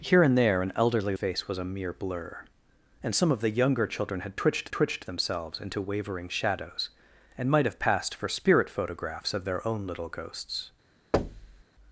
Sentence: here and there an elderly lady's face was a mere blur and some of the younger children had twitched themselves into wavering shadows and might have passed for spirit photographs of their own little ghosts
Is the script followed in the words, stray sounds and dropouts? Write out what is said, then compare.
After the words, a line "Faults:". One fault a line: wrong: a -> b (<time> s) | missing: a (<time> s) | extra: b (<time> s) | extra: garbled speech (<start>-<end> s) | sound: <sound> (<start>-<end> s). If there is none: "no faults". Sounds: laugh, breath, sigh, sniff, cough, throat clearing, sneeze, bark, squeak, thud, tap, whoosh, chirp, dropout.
here and there an elderly face was a mere blur and some of the younger children had twitched twitched themselves into wavering shadows and might have passed for spirit photographs of their own little ghosts
Faults:
missing: lady's (1.1 s)
extra: twitched (4.7 s)
sound: thud (11.1-11.6 s)